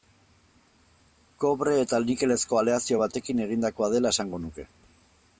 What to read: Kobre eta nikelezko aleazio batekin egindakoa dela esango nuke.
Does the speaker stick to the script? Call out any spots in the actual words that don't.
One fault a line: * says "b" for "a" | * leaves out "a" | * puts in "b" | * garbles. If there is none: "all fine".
all fine